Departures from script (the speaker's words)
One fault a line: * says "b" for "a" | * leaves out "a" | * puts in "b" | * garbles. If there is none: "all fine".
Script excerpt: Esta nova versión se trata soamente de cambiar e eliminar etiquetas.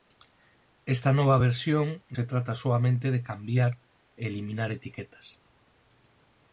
all fine